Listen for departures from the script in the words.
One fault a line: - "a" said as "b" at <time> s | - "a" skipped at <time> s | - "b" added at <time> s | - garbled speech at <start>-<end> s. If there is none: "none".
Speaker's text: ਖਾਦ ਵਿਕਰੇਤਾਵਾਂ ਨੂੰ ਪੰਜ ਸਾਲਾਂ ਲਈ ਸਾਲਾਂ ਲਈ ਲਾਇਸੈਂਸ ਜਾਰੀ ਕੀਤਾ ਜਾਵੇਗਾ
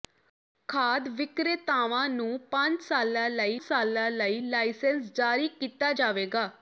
none